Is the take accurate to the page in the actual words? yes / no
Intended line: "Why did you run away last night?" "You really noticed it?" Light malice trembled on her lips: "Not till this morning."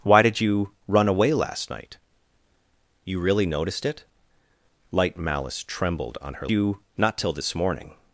no